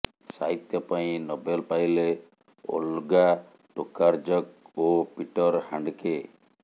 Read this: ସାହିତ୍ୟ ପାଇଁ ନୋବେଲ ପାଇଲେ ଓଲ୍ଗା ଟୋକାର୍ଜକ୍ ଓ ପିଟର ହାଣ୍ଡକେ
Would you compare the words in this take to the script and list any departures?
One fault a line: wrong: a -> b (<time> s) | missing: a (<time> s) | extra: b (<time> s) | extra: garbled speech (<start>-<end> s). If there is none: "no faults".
no faults